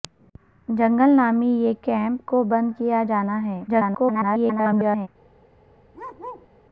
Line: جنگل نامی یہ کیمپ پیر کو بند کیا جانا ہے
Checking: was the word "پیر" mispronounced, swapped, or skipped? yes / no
yes